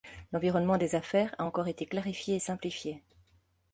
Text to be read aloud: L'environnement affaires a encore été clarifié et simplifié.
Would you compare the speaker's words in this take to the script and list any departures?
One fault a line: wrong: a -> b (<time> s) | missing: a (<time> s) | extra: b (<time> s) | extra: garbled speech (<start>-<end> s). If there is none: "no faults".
extra: des (0.8 s)